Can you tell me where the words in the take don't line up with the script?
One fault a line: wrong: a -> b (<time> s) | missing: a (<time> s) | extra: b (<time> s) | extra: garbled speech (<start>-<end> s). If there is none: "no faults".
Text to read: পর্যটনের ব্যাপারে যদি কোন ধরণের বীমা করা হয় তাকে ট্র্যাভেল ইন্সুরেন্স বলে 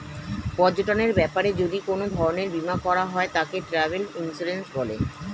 no faults